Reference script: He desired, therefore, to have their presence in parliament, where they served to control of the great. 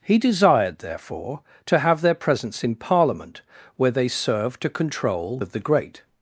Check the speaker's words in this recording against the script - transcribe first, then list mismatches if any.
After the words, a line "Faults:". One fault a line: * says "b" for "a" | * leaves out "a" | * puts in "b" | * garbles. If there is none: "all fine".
He desired, therefore, to have their presence in parliament, where they served to control of the great.
Faults:
all fine